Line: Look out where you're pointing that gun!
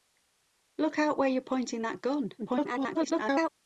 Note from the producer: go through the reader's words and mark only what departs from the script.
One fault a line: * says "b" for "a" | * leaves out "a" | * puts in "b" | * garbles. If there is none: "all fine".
* garbles